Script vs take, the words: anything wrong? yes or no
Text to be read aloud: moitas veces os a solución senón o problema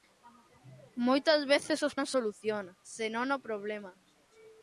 no